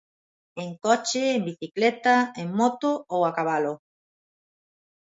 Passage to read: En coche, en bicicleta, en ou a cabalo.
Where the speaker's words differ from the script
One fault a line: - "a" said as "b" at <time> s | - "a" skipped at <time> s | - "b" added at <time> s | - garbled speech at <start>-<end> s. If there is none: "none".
- "moto" added at 2.6 s